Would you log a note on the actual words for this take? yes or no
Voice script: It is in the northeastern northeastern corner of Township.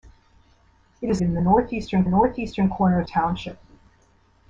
no